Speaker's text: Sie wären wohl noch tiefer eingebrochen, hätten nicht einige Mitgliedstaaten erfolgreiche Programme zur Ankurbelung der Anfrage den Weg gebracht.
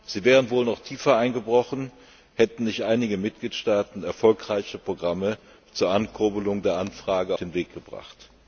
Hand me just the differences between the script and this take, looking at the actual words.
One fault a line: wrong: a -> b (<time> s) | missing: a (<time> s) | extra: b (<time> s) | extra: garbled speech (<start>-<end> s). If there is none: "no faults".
no faults